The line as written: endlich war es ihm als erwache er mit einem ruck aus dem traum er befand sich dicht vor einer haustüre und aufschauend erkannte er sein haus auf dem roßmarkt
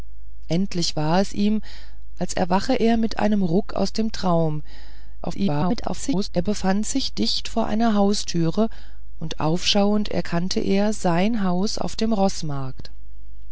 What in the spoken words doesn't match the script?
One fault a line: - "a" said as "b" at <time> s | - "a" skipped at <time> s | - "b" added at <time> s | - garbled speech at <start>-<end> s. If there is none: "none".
- garbled speech at 5.2-6.3 s